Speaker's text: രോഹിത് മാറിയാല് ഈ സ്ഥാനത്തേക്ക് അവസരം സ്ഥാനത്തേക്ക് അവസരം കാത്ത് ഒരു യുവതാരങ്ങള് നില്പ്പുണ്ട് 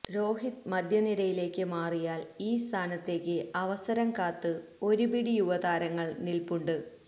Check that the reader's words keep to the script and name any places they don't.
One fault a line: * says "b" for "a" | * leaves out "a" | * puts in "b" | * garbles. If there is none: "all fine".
* puts in "മധ്യനിരയിലേക്ക്"
* leaves out "സ്ഥാനത്തേക്ക് അവസരം"
* puts in "പിടി"